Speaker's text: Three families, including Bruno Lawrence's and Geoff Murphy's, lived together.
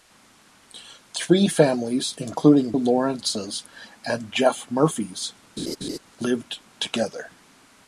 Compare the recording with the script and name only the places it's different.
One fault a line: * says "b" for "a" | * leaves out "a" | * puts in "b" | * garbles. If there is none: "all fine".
* leaves out "Bruno"